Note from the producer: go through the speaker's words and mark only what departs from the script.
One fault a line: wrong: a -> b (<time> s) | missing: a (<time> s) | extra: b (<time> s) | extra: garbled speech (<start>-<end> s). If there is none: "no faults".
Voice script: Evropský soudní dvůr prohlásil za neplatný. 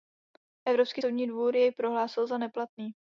extra: jej (1.5 s)